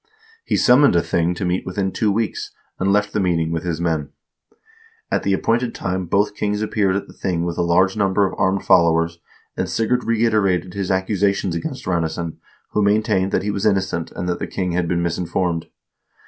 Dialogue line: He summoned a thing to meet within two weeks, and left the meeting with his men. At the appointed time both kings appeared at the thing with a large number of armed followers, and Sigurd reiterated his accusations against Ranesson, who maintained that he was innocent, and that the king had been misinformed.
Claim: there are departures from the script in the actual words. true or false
false